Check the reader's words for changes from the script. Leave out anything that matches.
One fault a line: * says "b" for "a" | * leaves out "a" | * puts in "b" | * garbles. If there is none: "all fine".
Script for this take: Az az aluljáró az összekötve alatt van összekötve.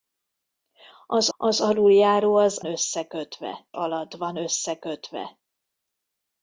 all fine